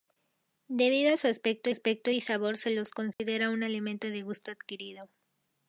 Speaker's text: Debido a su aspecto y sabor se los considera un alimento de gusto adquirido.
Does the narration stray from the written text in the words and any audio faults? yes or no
yes